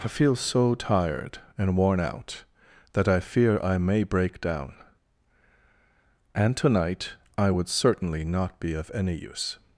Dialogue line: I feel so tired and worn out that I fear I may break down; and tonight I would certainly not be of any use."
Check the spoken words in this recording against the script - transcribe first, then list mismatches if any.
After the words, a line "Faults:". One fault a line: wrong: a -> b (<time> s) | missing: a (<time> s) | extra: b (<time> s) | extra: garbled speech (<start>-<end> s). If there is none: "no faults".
I feel so tired and worn out that I fear I may break down; and tonight I would certainly not be of any use."
Faults:
no faults